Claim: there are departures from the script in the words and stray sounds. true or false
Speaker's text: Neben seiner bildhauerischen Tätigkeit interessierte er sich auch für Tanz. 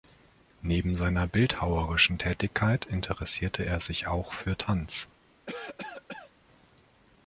true